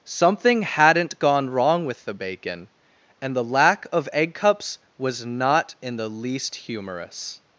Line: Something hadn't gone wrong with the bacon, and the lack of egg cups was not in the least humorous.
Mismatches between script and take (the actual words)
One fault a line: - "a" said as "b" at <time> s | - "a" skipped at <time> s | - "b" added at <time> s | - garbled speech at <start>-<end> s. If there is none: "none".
none